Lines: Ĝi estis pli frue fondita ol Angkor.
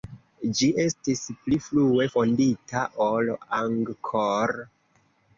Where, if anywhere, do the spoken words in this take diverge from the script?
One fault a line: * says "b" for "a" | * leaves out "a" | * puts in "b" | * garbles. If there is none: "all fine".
all fine